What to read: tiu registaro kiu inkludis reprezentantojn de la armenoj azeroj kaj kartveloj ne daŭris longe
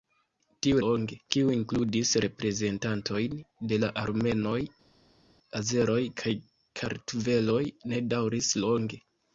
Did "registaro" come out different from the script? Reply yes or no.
yes